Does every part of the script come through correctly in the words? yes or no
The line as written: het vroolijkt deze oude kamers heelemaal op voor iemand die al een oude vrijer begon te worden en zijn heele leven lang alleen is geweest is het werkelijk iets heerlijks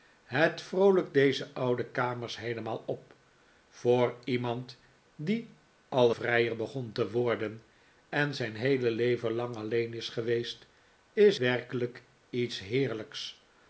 no